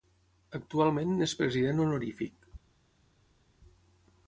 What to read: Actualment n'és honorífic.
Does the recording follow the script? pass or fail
fail